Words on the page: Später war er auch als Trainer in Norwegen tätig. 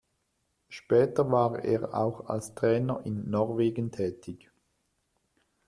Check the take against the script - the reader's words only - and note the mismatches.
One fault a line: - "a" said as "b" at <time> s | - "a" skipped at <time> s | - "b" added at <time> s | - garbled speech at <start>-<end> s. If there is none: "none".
none